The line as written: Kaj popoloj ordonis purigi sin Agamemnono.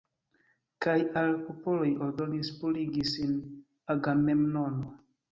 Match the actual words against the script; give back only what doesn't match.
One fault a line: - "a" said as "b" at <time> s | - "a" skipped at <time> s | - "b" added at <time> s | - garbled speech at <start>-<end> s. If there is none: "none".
- "al" added at 1.2 s